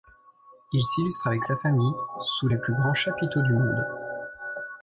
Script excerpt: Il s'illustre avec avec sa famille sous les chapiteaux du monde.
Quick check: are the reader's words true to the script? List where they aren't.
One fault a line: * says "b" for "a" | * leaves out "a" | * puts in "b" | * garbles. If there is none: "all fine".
* leaves out "avec"
* puts in "plus grands"